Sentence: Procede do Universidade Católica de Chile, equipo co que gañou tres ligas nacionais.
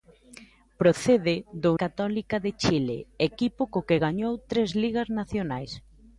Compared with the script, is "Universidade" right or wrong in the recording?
wrong